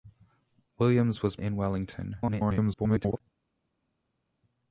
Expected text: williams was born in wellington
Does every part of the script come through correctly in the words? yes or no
no